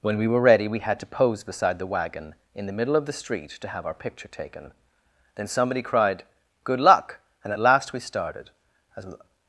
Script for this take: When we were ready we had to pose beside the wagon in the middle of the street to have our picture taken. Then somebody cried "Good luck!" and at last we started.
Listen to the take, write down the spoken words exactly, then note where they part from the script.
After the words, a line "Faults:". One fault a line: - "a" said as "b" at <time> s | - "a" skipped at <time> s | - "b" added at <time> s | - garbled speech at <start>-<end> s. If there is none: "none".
When we were ready we had to pose beside the wagon in the middle of the street to have our picture taken. Then somebody cried "Good luck!" and at last we started. As
Faults:
- "As" added at 9.0 s